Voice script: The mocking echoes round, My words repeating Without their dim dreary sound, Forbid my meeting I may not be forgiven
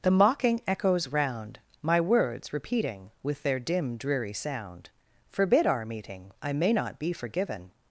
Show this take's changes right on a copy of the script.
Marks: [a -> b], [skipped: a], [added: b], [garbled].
The mocking echoes round, My words repeating [Without -> With] their dim dreary sound, Forbid [my -> our] meeting I may not be forgiven